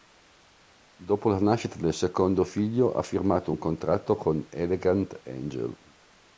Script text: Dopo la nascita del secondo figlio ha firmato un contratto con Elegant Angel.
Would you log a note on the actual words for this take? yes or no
no